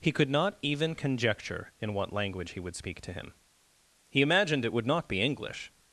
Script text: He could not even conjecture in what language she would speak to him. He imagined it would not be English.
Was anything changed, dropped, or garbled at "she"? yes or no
yes